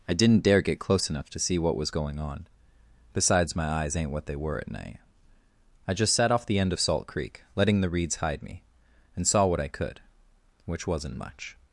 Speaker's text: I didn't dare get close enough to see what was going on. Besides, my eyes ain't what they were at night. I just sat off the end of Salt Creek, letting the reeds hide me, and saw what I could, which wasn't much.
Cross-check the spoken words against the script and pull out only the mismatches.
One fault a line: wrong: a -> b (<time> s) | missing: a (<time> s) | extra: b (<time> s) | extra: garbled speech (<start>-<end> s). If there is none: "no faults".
no faults